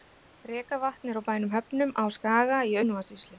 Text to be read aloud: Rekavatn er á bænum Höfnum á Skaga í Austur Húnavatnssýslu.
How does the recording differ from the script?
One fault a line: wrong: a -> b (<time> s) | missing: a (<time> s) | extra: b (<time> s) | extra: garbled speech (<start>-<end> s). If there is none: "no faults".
missing: Austur (2.8 s)